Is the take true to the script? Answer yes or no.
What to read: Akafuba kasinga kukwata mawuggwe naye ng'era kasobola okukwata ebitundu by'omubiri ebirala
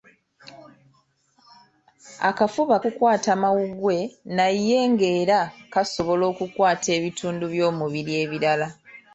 no